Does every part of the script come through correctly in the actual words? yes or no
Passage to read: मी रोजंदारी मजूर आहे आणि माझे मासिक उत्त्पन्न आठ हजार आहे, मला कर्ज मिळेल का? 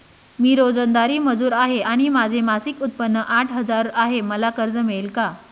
yes